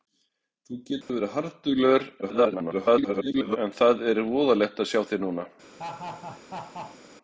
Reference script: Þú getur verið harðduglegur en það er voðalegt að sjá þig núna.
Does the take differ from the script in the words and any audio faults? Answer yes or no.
yes